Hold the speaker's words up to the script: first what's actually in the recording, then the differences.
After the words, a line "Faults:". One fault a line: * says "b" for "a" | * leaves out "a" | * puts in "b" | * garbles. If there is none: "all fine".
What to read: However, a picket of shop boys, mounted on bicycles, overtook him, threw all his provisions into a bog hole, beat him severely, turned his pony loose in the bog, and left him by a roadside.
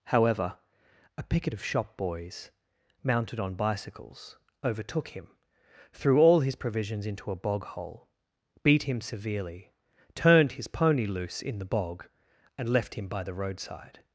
However, a picket of shop boys, mounted on bicycles, overtook him, threw all his provisions into a bog hole, beat him severely, turned his pony loose in the bog, and left him by the roadside.
Faults:
* says "the" for "a"